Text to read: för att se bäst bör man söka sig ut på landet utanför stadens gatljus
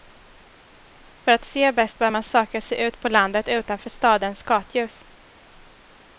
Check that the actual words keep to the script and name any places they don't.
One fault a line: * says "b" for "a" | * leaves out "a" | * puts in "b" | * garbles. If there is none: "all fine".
all fine